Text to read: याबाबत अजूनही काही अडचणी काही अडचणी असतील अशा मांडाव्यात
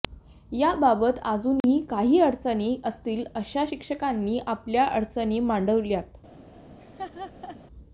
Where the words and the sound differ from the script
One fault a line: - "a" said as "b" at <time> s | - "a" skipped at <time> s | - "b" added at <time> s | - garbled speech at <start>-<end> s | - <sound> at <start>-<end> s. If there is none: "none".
- dropout at 1.6-1.6 s
- "काही अडचणी असतील अशा" said as "असतील अशा शिक्षकांनी आपल्या अडचणी" at 2.9 s
- laugh at 6.8-7.6 s